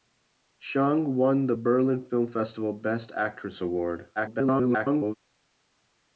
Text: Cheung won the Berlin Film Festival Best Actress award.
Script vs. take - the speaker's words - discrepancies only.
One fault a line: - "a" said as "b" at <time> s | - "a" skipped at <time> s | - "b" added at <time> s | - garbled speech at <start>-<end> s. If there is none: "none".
- garbled speech at 4.1-5.2 s